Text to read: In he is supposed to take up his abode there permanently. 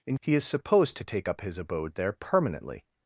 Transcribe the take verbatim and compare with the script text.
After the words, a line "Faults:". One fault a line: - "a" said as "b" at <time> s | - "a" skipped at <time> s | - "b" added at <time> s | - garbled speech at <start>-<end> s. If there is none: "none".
In he is supposed to take up his abode there permanently.
Faults:
none